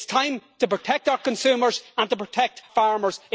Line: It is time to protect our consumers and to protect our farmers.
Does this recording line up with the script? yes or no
no